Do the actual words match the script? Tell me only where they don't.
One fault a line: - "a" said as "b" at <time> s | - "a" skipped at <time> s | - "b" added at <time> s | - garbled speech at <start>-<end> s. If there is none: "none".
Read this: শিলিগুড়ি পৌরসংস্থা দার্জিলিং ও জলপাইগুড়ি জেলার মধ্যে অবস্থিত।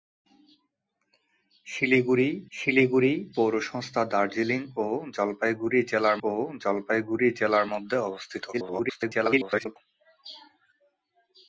- "শিলিগুড়ি" added at 2.5 s
- "ও জলপাইগুড়ি জেলার" added at 6.2 s
- garbled speech at 8.5-9.8 s